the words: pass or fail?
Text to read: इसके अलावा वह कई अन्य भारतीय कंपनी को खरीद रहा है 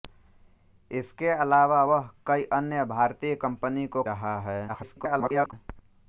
fail